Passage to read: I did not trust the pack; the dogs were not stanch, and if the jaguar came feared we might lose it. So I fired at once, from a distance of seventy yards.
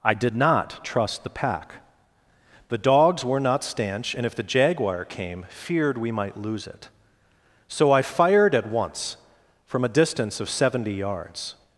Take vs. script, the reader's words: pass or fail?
pass